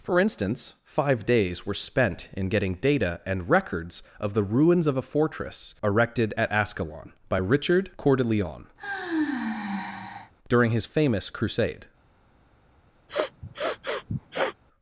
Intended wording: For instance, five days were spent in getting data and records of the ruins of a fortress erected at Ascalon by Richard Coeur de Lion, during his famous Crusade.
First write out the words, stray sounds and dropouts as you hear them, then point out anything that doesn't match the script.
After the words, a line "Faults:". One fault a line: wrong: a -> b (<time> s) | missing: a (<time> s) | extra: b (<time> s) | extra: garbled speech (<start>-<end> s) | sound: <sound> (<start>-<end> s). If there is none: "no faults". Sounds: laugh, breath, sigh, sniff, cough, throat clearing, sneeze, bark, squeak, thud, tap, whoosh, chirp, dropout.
For instance, five days were spent in getting data and records of the ruins of a fortress erected at Ascalon by Richard Coeur de Lion, during his famous Crusade.
Faults:
sound: sigh (8.8-10.3 s)
sound: sniff (13.1-14.6 s)